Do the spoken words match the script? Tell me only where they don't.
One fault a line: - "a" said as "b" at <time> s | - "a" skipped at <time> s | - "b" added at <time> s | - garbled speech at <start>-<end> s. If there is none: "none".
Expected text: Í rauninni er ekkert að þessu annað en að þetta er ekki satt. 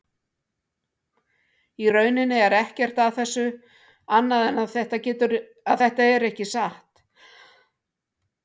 none